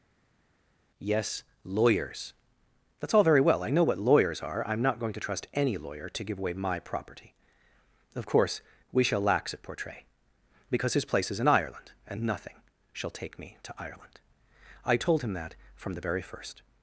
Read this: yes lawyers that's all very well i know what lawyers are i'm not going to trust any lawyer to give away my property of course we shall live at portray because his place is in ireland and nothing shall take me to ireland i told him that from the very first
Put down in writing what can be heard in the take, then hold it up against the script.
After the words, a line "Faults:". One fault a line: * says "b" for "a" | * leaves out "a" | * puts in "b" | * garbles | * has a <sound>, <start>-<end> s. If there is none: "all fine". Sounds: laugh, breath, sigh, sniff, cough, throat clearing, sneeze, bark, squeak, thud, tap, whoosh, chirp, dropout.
yes lawyers that's all very well i know what lawyers are i'm not going to trust any lawyer to give away my property of course we shall lax at portray because his place is in ireland and nothing shall take me to ireland i told him that from the very first
Faults:
* says "lax" for "live"